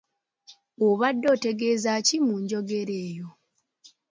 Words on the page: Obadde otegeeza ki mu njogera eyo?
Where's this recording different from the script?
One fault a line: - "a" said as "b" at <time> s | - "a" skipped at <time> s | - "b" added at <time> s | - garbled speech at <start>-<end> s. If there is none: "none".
none